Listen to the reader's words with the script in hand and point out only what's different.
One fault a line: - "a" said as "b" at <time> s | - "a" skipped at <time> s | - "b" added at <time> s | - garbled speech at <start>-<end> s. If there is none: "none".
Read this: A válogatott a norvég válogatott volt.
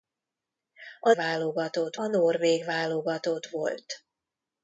none